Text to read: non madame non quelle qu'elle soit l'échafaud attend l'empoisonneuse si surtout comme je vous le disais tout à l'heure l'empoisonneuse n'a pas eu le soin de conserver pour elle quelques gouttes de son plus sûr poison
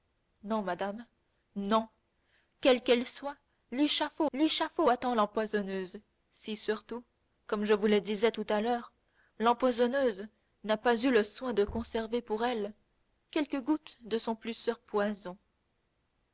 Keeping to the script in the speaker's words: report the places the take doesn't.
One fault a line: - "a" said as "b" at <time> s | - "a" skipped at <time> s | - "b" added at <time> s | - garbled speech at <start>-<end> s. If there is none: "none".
- "l'échafaud" added at 4.3 s